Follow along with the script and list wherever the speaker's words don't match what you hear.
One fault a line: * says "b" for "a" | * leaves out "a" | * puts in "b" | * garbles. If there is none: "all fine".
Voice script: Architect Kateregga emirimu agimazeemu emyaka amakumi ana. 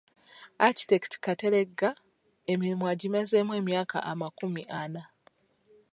all fine